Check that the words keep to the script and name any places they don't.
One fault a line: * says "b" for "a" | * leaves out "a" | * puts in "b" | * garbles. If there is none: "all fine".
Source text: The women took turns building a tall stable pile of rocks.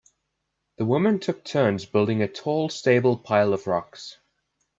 all fine